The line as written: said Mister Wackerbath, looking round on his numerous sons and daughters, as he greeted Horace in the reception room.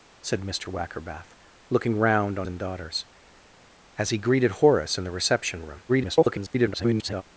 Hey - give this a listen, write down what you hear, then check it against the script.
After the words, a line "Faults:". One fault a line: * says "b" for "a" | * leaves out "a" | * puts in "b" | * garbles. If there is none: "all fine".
said Mister Wackerbath, looking round on and daughters, as he greeted Horace in the reception room. [garbled]
Faults:
* leaves out "his numerous sons"
* garbles